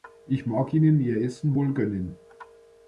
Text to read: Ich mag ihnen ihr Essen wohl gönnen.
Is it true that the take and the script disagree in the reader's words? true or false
false